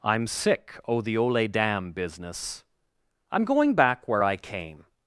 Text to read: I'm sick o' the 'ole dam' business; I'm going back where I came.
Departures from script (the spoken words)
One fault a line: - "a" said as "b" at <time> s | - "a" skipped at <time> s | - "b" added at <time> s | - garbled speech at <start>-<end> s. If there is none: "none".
none